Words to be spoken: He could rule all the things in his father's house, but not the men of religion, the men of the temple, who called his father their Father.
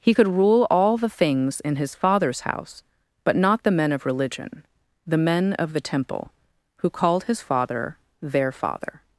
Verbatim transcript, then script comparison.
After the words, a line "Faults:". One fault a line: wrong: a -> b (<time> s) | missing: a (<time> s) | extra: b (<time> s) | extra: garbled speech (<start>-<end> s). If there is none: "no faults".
He could rule all the things in his father's house, but not the men of religion, the men of the temple, who called his father their Father.
Faults:
no faults